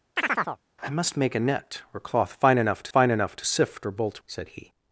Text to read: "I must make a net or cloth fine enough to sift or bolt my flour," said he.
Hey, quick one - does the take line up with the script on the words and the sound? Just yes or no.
no